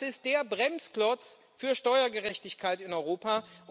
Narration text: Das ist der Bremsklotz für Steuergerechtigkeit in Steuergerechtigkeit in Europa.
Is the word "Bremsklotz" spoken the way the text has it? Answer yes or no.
yes